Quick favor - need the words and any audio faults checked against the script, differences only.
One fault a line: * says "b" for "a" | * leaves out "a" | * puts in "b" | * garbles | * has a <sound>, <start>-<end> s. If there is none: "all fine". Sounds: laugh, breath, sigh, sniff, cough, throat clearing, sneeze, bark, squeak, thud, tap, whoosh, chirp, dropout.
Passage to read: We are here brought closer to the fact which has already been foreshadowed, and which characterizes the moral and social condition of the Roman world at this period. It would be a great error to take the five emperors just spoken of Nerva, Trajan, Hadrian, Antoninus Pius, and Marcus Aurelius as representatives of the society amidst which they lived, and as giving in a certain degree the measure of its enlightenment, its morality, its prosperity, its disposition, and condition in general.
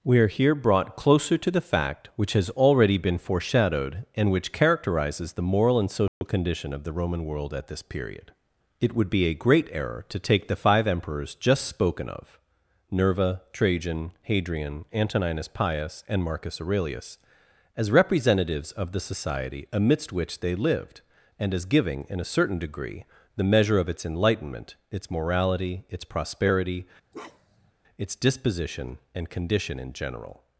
* has a dropout, 6.1-6.2 s
* has a bark, 27.1-27.7 s